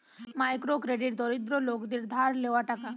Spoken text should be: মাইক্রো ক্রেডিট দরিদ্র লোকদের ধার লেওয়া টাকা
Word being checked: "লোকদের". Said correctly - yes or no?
yes